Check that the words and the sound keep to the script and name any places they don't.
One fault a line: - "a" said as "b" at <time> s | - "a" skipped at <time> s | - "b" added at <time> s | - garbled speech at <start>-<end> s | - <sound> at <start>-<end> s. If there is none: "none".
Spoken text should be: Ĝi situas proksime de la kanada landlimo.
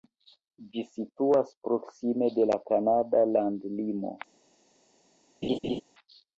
- laugh at 5.4-5.8 s